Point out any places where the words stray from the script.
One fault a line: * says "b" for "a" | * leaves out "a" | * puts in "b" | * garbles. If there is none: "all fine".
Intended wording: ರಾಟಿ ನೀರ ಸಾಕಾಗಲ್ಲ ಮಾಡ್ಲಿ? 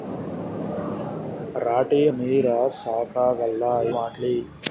all fine